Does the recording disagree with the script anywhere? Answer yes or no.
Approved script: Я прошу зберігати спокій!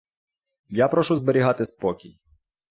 no